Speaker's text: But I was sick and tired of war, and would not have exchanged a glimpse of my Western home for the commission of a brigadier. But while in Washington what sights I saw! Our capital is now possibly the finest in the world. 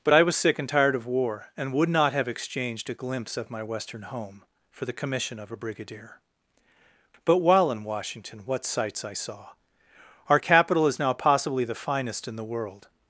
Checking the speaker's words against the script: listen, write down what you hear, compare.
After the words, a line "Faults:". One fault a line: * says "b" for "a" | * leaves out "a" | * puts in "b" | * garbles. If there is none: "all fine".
But I was sick and tired of war, and would not have exchanged a glimpse of my Western home for the commission of a brigadier. But while in Washington what sights I saw! Our capital is now possibly the finest in the world.
Faults:
all fine